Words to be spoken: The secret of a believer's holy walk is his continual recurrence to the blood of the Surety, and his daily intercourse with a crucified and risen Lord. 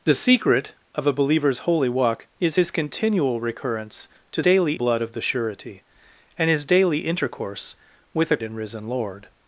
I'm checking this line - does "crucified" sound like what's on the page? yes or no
no